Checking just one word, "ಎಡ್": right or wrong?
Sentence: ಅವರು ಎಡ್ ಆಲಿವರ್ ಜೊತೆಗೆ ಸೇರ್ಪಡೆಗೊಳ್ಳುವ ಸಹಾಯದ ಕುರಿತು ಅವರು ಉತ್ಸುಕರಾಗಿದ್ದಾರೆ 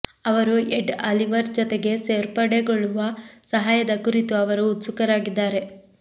right